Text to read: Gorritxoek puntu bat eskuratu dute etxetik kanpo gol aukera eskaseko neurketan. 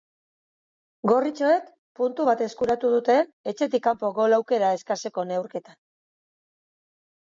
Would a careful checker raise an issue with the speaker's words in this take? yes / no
no